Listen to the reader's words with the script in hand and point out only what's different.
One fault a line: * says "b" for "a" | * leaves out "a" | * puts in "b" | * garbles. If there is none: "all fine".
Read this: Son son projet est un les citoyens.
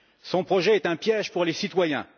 * leaves out "son"
* puts in "piège pour"